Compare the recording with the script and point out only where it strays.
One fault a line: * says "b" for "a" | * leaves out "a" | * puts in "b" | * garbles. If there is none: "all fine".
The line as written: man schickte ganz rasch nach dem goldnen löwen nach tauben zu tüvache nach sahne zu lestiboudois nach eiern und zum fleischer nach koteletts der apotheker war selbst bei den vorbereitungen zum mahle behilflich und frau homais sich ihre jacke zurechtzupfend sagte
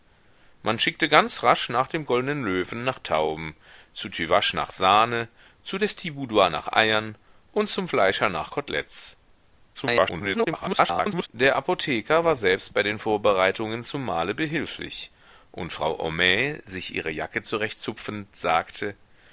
* garbles